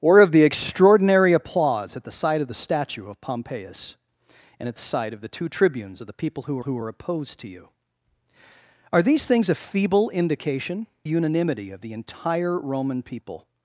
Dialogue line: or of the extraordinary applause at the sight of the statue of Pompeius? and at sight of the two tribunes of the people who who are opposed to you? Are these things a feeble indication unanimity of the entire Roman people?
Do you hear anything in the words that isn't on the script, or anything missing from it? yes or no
no